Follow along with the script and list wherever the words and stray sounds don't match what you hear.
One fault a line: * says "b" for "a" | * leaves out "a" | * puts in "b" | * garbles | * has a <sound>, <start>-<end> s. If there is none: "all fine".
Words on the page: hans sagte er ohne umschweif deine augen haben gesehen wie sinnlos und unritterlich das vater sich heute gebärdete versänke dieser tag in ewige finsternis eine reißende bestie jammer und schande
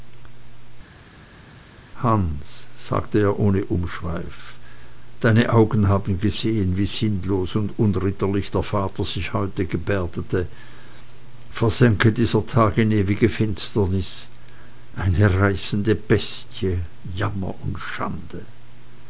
* says "der" for "das"